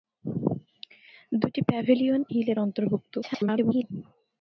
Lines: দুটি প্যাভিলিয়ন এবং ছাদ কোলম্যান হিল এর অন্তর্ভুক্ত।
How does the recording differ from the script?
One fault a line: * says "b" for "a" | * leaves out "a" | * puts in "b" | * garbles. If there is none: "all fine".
* leaves out "এবং ছাদ কোলম্যান"
* garbles